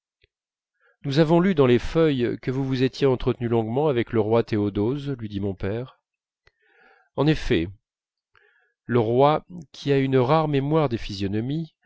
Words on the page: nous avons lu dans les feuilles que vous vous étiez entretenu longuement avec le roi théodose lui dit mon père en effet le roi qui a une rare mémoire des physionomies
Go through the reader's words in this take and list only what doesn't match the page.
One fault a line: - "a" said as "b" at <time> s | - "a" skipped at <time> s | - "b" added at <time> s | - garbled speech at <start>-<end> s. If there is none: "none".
none